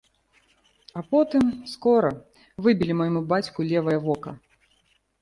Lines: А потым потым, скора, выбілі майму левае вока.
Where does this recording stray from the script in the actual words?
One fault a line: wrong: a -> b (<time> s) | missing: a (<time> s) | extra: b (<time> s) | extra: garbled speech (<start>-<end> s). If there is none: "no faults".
missing: потым (1.4 s)
extra: бацьку (3.3 s)